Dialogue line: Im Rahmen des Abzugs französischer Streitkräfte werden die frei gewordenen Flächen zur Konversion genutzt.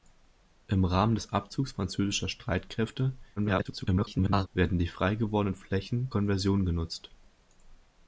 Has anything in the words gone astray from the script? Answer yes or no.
yes